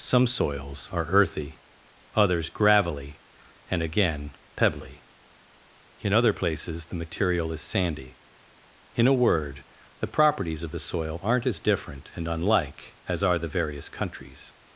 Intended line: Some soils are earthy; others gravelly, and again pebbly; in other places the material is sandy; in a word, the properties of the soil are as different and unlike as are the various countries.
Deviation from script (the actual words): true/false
true